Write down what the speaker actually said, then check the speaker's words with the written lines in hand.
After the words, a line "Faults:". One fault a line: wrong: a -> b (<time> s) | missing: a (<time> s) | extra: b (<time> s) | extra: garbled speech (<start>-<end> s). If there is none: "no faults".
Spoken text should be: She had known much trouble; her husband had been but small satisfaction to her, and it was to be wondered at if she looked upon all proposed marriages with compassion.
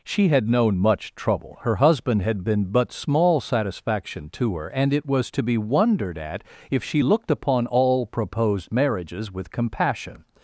She had known much trouble; her husband had been but small satisfaction to her, and it was to be wondered at if she looked upon all proposed marriages with compassion.
Faults:
no faults